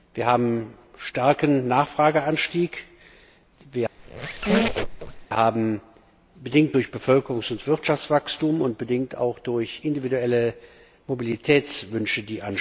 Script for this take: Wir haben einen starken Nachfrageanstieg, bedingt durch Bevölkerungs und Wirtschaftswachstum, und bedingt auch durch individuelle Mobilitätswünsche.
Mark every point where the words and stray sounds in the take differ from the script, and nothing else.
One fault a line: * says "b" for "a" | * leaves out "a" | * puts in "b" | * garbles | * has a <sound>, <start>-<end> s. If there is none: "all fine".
* has a squeak, 4.0-5.3 s